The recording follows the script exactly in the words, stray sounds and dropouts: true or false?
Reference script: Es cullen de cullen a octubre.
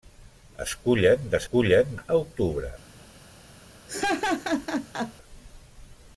false